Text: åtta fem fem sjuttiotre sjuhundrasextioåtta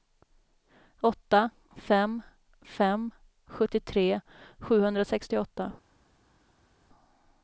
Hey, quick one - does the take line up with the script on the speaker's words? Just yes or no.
yes